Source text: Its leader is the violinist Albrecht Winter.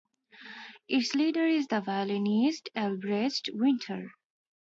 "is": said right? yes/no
yes